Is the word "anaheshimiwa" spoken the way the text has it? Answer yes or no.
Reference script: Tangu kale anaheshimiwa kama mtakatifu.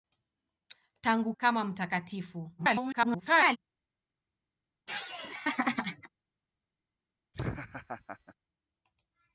no